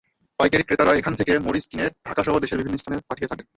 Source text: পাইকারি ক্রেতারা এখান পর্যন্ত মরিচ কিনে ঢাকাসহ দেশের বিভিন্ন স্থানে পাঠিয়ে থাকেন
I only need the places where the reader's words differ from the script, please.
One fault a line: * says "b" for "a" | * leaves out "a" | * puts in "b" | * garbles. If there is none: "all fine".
* says "থেকে" for "পর্যন্ত"